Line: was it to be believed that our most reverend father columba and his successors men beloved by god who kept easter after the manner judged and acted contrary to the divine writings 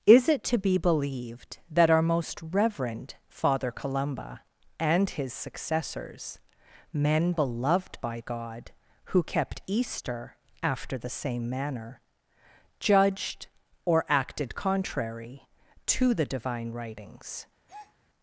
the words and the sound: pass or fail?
fail